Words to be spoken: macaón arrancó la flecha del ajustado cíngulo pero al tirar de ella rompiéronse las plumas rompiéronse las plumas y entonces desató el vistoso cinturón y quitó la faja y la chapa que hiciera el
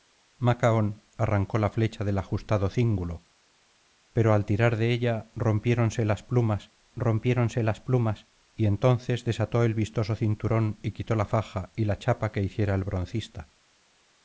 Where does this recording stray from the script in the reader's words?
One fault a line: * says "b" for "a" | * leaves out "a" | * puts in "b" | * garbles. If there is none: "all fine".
all fine